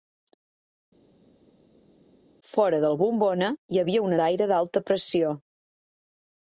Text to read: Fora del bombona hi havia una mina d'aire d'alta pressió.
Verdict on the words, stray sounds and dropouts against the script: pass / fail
fail